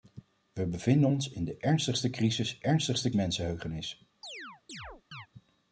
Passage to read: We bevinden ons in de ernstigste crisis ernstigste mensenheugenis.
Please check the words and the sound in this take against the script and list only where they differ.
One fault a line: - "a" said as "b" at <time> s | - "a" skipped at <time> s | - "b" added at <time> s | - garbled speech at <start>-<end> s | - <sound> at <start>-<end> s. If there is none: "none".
- chirp at 4.2-5.3 s